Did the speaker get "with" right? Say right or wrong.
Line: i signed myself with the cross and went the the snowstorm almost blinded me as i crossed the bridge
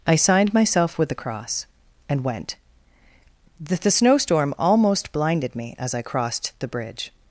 right